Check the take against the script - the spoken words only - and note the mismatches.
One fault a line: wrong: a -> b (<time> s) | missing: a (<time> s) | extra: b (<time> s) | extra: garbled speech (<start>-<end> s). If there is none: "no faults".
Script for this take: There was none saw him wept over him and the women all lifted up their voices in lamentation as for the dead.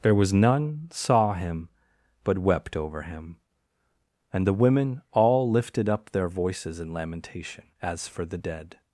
extra: but (2.2 s)